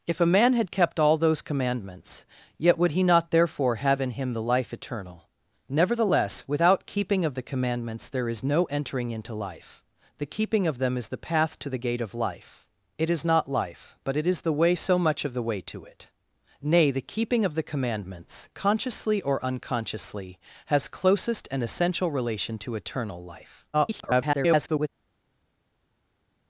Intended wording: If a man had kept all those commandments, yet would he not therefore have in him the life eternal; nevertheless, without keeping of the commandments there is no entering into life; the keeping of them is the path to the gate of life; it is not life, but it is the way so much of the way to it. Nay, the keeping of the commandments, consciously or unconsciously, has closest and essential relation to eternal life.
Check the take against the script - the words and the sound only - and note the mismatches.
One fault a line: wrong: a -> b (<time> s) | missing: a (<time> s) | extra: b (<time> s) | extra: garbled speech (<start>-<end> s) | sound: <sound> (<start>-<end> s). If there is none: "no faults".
extra: garbled speech (23.7-24.9 s)